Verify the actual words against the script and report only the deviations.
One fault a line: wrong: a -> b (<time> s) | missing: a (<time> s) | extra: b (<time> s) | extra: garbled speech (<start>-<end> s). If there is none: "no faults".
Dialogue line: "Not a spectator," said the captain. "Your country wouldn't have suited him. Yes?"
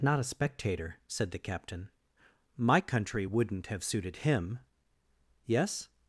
wrong: Your -> My (2.5 s)